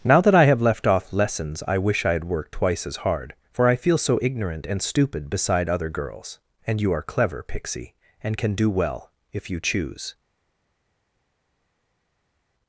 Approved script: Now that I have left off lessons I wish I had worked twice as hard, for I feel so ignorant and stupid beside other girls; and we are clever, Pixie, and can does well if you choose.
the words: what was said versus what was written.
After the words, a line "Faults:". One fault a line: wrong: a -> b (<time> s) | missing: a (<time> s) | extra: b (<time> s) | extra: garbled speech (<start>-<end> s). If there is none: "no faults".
Now that I have left off lessons I wish I had worked twice as hard, for I feel so ignorant and stupid beside other girls; and you are clever, Pixie, and can do well if you choose.
Faults:
wrong: we -> you (6.8 s)
wrong: does -> do (8.5 s)